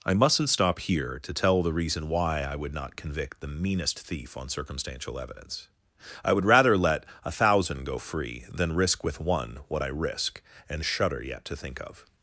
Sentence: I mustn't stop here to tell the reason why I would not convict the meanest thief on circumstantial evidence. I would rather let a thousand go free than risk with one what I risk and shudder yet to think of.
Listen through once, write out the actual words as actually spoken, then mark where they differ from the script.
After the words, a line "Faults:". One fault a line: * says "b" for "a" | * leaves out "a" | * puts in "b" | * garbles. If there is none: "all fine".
I mustn't stop here to tell the reason why I would not convict the meanest thief on circumstantial evidence. I would rather let a thousand go free than risk with one what I risk and shudder yet to think of.
Faults:
all fine